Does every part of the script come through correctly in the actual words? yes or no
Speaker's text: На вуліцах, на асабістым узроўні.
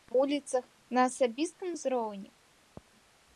yes